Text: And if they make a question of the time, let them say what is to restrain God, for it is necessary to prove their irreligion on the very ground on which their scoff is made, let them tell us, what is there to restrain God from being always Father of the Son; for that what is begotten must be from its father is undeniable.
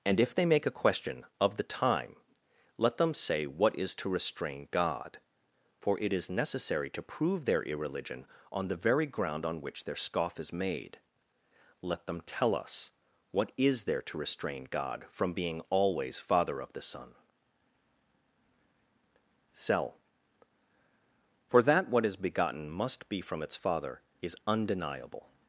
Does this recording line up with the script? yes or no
no